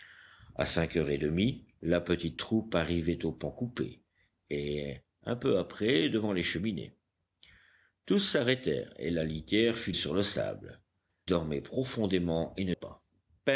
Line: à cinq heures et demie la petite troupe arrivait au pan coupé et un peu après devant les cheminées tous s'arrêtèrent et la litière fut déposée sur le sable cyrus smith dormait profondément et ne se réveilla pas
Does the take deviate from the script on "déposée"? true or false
true